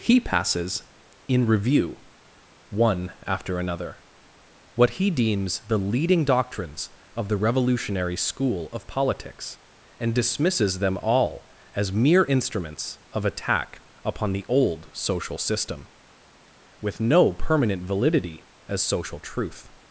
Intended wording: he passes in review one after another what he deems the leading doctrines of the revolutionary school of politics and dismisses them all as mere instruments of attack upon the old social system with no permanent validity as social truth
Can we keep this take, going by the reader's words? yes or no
yes